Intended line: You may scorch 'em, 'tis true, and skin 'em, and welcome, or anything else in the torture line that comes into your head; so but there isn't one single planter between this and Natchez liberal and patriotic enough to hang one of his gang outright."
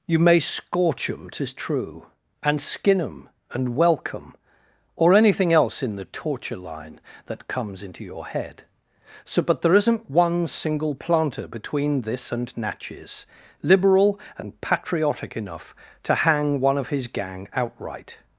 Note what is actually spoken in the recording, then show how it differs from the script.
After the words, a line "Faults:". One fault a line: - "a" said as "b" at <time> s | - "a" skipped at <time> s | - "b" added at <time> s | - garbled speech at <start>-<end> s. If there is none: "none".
You may scorch 'em, 'tis true, and skin 'em, and welcome, or anything else in the torture line that comes into your head; so but there isn't one single planter between this and Natchez liberal and patriotic enough to hang one of his gang outright."
Faults:
none